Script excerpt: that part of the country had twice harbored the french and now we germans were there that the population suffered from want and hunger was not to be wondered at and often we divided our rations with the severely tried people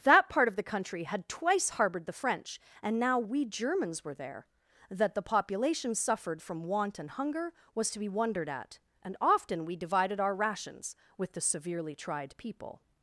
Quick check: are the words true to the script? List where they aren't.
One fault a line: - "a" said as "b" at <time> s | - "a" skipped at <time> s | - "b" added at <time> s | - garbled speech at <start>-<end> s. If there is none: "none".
- "not" skipped at 7.9 s